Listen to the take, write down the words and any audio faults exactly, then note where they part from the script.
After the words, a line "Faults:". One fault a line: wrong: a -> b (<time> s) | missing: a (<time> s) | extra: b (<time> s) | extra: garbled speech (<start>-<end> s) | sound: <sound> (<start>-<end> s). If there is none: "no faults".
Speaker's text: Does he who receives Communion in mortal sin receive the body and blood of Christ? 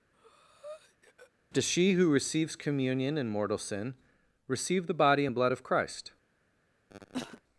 Does she who receives Communion in mortal sin receive the body and blood of Christ?
Faults:
sound: breath (0.1-1.3 s)
wrong: he -> she (1.6 s)
sound: cough (6.9-7.4 s)